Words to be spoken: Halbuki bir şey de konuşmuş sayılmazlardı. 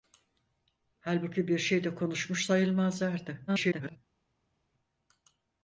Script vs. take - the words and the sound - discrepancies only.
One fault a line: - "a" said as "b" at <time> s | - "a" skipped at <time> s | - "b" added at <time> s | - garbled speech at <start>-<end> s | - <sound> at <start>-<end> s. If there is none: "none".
- garbled speech at 3.5-4.0 s